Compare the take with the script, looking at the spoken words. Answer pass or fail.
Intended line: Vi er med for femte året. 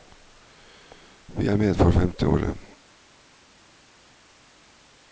pass